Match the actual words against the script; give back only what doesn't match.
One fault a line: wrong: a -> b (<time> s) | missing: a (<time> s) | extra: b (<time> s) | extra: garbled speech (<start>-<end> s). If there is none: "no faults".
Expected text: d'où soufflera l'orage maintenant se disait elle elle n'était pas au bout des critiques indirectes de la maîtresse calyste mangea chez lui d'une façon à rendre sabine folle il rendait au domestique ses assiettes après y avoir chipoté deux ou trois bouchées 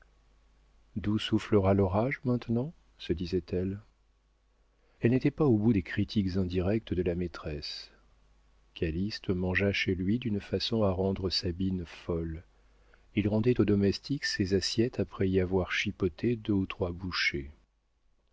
no faults